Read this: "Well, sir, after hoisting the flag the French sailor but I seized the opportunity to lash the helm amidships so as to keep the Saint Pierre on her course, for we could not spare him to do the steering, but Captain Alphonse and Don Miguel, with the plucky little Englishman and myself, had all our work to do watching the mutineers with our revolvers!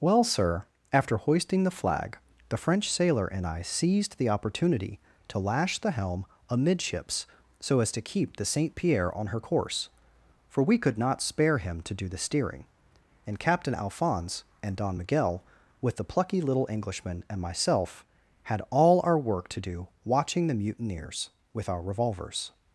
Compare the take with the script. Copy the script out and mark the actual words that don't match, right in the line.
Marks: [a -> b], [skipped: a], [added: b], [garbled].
"Well, sir, after hoisting the flag the French sailor [but -> and] I seized the opportunity to lash the helm amidships so as to keep the Saint Pierre on her course, for we could not spare him to do the steering, [but -> and] Captain Alphonse and Don Miguel, with the plucky little Englishman and myself, had all our work to do watching the mutineers with our revolvers!